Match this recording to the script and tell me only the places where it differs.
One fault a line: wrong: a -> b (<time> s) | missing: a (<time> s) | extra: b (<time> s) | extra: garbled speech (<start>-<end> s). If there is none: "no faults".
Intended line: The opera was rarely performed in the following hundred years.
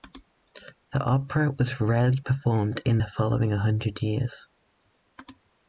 no faults